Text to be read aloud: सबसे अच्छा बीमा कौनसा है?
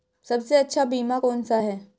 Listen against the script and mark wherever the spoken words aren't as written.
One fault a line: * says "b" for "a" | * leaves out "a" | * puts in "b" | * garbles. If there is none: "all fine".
all fine